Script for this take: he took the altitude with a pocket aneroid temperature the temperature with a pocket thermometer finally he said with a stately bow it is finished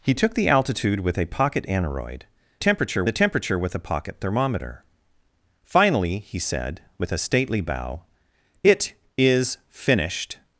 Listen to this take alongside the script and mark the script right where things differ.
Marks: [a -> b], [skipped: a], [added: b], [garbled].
he took the altitude with a pocket aneroid temperature the temperature with a pocket thermometer finally he said with a stately bow it is finished